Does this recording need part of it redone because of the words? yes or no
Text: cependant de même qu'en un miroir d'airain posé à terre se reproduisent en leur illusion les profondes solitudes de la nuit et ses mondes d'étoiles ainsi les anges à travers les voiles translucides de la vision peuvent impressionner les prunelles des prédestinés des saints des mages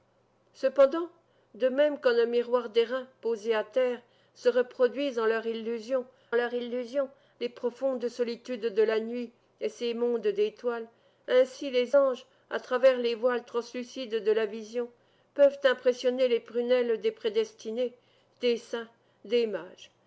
yes